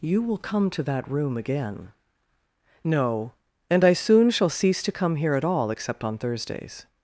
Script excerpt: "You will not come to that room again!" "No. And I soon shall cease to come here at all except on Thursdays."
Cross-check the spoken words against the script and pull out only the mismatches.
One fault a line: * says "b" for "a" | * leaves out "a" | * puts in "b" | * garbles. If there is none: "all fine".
* leaves out "not"